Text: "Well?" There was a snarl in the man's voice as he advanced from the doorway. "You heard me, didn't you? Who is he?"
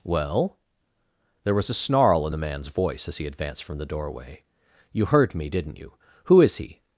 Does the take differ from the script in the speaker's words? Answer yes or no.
no